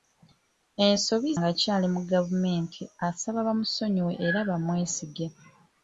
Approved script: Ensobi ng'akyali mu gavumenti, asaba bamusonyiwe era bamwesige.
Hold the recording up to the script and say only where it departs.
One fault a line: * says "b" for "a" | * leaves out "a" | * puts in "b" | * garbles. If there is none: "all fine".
all fine